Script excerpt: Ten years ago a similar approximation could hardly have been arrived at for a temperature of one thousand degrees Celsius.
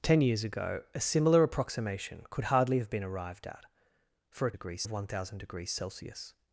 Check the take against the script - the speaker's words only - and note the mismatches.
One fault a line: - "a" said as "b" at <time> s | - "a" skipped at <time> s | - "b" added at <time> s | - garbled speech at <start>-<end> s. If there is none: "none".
- "temperature" said as "degrees" at 4.5 s